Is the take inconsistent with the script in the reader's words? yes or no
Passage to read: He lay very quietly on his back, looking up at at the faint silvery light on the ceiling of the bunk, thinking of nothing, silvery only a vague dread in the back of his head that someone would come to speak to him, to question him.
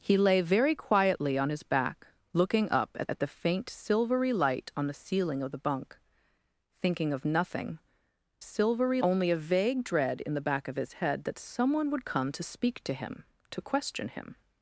no